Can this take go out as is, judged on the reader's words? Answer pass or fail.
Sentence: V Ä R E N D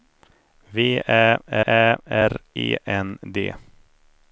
fail